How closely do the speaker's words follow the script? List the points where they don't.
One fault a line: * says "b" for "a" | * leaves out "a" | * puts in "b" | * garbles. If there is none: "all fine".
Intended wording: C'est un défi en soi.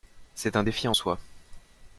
all fine